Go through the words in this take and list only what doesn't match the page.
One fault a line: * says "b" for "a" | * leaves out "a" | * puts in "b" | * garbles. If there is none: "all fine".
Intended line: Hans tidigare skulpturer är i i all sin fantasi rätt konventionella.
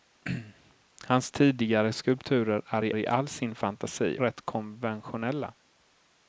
all fine